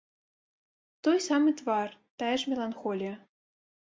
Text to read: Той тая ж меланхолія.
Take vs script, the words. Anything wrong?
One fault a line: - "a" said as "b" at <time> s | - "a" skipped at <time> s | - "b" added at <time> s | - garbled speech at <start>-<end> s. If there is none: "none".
- "самы твар" added at 1.2 s